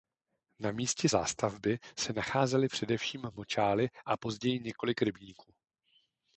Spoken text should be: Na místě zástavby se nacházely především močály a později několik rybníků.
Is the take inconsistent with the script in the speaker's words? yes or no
no